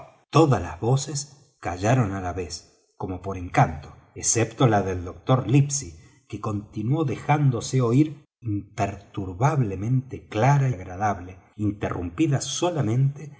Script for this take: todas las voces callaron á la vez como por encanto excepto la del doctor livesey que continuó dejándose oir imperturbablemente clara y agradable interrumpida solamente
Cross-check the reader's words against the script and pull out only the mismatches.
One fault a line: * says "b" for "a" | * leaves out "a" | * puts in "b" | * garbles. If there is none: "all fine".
* leaves out "y"